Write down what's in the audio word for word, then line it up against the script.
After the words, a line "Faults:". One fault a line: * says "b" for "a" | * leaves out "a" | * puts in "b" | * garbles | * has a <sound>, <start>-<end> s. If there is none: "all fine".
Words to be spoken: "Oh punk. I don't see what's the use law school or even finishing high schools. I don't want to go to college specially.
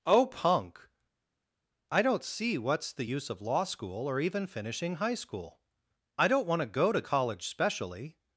"Oh punk. I don't see what's the use of law school or even finishing high school. I don't want to go to college specially.
Faults:
* puts in "of"
* says "school" for "schools"